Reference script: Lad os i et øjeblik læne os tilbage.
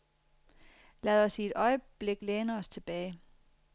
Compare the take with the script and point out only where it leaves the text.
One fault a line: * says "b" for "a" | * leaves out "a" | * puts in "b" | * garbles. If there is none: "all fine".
all fine